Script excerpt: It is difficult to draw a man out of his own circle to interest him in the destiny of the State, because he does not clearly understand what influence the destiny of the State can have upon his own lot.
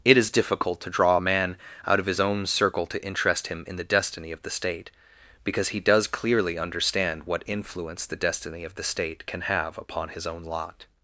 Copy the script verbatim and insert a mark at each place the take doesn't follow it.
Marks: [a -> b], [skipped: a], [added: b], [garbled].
It is difficult to draw a man out of his own circle to interest him in the destiny of the State, because he does [skipped: not] clearly understand what influence the destiny of the State can have upon his own lot.